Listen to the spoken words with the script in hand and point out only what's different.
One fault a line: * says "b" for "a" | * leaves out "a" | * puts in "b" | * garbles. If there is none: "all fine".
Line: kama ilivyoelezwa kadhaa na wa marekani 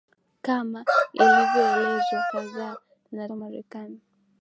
all fine